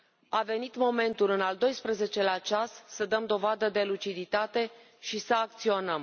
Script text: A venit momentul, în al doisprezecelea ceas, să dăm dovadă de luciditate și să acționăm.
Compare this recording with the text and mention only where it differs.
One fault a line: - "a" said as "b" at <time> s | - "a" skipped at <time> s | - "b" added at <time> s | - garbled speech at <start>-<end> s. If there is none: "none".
none